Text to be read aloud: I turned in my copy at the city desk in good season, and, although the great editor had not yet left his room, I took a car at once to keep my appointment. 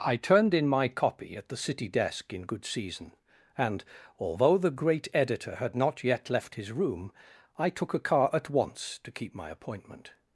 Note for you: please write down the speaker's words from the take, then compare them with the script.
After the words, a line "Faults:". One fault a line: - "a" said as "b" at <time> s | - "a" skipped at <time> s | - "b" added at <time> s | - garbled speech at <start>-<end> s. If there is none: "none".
I turned in my copy at the city desk in good season, and, although the great editor had not yet left his room, I took a car at once to keep my appointment.
Faults:
none